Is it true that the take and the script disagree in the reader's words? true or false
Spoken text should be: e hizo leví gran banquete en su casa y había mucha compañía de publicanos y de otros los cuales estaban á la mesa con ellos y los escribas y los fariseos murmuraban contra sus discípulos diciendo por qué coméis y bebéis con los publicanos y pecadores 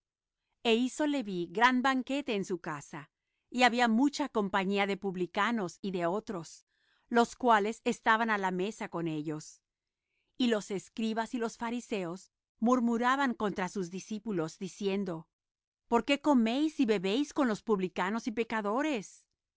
false